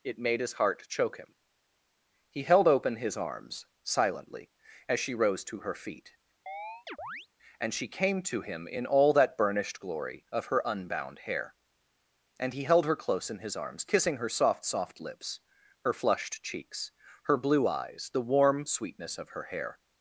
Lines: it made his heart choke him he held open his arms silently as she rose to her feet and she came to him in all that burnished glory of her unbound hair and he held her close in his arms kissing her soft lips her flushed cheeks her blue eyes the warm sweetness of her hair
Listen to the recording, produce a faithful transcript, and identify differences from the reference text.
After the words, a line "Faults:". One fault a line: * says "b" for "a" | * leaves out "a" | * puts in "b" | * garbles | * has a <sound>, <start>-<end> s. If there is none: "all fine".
it made his heart choke him he held open his arms silently as she rose to her feet and she came to him in all that burnished glory of her unbound hair and he held her close in his arms kissing her soft soft lips her flushed cheeks her blue eyes the warm sweetness of her hair
Faults:
* has a chirp, 6.5-7.3 s
* puts in "soft"